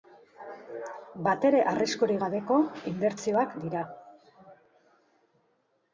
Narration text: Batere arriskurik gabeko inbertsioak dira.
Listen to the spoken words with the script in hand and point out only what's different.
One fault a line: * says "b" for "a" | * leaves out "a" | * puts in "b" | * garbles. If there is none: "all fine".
all fine